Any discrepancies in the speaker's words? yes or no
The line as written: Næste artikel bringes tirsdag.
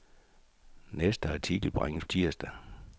no